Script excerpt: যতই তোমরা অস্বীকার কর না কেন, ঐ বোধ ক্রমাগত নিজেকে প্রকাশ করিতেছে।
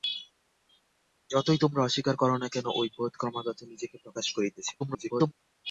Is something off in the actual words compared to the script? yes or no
yes